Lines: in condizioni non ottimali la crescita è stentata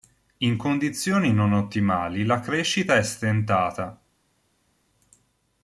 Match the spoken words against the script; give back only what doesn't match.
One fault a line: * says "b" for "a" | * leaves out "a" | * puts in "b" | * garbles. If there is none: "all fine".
all fine